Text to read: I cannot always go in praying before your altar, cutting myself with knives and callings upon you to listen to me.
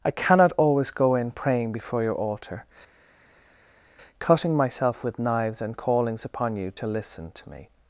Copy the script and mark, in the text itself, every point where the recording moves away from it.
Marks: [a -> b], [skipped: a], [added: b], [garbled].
I cannot always go in praying before your altar, cutting myself with knives and callings upon you to listen to me.